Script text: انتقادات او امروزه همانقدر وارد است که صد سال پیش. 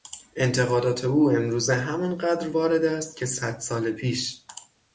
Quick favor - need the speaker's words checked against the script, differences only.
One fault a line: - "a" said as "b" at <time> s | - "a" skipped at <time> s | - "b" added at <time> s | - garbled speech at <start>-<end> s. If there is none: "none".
none